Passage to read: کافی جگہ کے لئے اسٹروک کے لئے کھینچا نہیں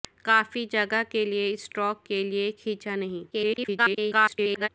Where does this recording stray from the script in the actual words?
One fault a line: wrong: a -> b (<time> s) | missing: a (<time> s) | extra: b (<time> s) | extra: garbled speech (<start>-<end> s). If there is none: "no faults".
extra: garbled speech (3.3-4.7 s)